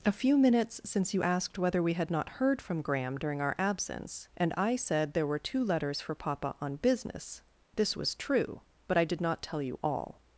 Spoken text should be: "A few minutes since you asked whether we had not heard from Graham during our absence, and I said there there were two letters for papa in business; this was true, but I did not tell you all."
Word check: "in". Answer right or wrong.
wrong